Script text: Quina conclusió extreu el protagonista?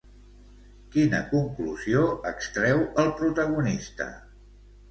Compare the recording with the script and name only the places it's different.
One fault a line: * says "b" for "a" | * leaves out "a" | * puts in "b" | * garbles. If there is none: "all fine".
all fine